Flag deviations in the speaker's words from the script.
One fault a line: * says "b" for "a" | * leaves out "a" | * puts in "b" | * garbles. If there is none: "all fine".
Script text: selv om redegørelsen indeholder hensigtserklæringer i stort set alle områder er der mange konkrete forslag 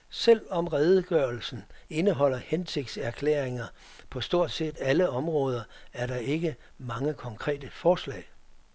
* says "på" for "i"
* puts in "ikke"